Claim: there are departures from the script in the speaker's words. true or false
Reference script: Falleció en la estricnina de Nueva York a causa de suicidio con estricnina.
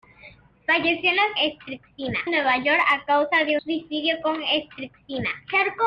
false